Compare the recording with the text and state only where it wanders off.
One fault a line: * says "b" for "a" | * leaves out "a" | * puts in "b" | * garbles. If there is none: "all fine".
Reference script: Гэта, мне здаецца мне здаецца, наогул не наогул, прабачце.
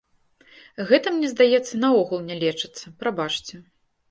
* leaves out "мне здаецца"
* says "лечыцца" for "наогул"